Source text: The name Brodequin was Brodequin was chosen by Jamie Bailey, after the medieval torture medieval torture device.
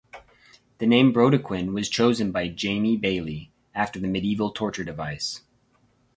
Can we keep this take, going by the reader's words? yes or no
no